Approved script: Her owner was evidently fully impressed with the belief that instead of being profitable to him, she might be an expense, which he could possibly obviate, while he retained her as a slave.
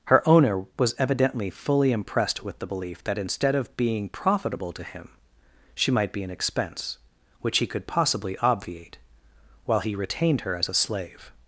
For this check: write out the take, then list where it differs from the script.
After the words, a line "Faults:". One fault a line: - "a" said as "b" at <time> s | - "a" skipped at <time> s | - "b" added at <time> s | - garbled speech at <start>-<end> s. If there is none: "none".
Her owner was evidently fully impressed with the belief that instead of being profitable to him, she might be an expense, which he could possibly obviate, while he retained her as a slave.
Faults:
none